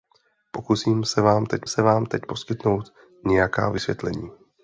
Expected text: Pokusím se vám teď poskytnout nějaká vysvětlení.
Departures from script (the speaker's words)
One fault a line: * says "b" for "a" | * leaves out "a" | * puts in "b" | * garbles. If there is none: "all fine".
* puts in "se vám teď"